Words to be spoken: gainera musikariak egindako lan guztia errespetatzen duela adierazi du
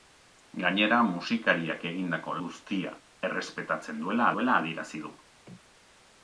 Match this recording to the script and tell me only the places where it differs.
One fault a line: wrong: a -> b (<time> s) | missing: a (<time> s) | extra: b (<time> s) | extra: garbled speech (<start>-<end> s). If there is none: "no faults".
missing: lan (2.3 s)
extra: duela (4.3 s)